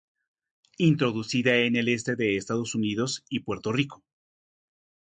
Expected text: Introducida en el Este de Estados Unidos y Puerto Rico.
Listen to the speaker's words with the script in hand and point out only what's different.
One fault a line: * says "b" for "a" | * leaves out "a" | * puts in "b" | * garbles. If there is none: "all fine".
all fine